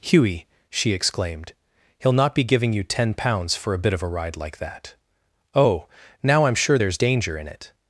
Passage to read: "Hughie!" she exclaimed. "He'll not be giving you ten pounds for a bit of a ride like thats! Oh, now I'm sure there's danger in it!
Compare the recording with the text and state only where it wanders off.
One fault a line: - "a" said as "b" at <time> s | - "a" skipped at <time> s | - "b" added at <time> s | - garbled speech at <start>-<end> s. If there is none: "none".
- "thats" said as "that" at 4.6 s